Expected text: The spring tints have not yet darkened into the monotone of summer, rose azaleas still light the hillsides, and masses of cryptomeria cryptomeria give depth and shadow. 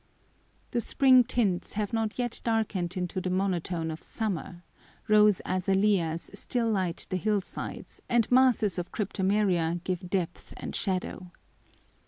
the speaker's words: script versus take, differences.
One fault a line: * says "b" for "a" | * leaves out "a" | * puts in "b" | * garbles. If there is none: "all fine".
* leaves out "cryptomeria"